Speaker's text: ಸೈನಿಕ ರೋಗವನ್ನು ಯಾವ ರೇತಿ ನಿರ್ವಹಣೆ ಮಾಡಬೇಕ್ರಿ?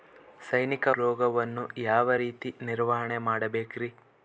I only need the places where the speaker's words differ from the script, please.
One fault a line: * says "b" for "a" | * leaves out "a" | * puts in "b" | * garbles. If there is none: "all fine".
all fine